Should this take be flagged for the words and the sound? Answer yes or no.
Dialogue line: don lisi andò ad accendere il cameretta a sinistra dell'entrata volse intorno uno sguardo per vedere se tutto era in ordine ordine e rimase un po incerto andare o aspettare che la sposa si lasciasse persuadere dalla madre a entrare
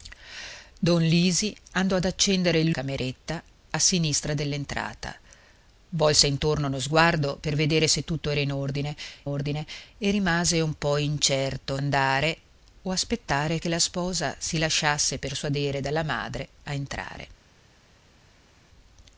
no